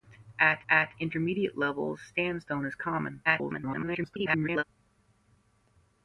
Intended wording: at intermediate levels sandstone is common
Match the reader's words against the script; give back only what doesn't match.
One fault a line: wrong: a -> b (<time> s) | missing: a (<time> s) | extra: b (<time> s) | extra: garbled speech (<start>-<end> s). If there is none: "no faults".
extra: at (0.7 s)
extra: garbled speech (3.2-4.6 s)